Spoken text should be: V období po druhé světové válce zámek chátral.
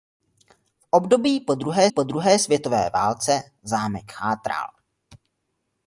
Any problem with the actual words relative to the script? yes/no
yes